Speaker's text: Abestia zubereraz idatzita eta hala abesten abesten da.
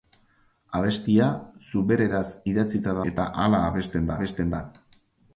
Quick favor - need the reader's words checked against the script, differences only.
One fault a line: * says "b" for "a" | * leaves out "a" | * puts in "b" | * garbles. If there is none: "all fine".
all fine